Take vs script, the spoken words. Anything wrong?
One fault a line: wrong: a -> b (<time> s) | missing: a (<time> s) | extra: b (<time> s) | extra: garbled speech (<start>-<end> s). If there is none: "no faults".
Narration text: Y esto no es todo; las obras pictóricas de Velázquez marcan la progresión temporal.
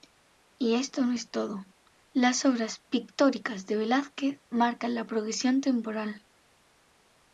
no faults